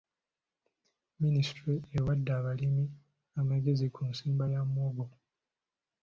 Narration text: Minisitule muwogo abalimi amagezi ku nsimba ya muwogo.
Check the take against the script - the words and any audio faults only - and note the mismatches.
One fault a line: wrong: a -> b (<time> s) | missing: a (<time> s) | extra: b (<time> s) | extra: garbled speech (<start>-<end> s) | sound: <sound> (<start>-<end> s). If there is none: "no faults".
wrong: muwogo -> ewadde (2.0 s)